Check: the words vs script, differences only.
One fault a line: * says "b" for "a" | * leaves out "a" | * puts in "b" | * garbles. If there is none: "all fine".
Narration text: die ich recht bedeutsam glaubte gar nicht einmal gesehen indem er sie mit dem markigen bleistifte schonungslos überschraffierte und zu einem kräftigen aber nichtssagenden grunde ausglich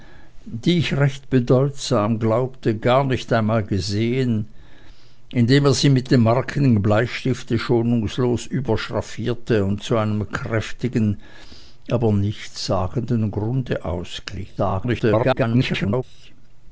* garbles